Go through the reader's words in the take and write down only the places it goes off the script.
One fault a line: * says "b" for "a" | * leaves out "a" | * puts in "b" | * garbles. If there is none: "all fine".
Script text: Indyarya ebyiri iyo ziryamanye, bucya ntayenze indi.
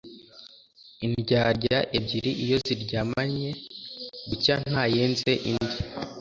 all fine